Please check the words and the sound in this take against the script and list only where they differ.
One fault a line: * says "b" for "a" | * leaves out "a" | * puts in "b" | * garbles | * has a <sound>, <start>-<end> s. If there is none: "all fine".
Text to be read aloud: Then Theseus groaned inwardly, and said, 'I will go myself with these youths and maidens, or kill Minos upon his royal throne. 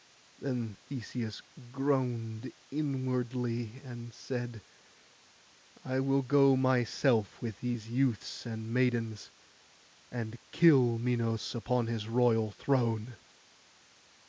* says "and" for "or"